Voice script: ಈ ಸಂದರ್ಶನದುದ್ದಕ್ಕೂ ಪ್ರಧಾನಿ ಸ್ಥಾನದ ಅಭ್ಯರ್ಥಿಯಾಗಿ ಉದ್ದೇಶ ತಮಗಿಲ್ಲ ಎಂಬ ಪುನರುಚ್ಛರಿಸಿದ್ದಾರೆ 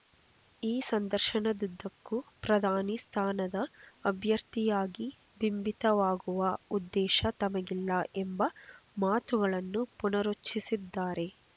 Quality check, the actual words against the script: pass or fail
fail